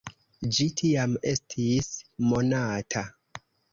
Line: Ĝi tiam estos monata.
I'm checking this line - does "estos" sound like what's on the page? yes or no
no